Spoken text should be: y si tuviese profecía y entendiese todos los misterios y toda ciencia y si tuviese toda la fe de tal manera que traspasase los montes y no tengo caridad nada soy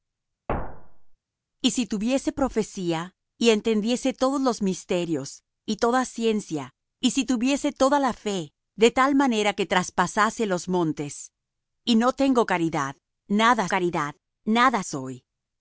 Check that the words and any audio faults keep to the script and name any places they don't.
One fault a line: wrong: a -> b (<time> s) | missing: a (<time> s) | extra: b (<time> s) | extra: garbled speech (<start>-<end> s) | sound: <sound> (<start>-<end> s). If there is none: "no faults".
sound: thud (0.5-1.2 s)
extra: caridad nada (13.7 s)